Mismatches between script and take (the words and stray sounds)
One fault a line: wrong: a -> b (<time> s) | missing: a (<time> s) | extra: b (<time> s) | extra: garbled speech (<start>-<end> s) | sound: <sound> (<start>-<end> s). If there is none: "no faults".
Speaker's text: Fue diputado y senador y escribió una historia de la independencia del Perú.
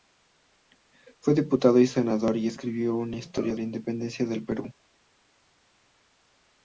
missing: de (3.6 s)